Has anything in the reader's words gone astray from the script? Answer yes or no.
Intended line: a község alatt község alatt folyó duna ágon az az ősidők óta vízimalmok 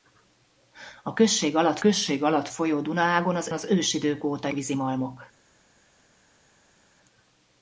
no